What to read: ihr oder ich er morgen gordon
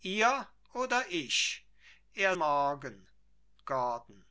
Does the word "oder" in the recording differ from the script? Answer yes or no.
no